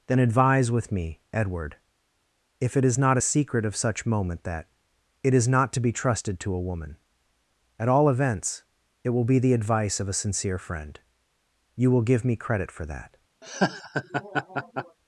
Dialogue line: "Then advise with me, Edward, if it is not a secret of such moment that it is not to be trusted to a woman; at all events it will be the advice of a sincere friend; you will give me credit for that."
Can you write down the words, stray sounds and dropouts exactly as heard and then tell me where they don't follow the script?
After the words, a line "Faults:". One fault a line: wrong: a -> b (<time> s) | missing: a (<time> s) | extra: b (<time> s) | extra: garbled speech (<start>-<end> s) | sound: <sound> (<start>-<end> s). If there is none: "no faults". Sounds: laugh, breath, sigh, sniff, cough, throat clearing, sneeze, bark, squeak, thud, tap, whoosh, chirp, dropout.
"Then advise with me, Edward, if it is not a secret of such moment that it is not to be trusted to a woman; at all events it will be the advice of a sincere friend; you will give me credit for that."
Faults:
sound: laugh (13.4-15.0 s)